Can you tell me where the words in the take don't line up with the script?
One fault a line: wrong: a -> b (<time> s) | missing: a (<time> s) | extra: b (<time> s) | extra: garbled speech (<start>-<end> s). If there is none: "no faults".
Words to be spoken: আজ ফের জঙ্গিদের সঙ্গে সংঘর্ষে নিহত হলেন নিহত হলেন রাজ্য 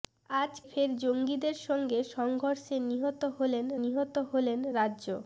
no faults